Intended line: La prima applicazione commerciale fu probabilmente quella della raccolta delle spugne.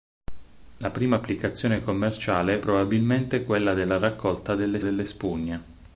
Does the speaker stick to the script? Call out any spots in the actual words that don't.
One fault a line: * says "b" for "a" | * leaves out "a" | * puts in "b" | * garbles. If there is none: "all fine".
* leaves out "fu"
* puts in "delle"